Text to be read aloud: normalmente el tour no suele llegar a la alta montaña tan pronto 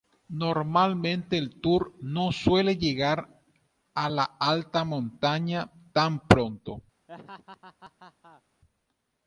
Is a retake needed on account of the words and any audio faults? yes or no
yes